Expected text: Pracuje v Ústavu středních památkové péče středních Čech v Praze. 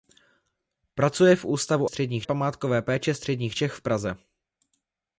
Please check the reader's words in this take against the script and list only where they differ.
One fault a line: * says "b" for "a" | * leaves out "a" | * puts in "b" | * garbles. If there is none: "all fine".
all fine